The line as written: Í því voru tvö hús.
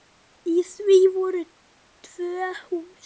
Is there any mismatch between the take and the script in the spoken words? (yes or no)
no